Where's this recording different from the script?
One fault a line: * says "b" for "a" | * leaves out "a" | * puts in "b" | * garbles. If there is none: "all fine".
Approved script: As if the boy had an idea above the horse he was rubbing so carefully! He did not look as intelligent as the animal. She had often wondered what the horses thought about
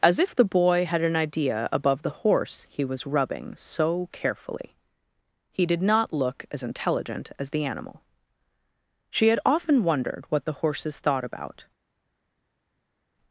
all fine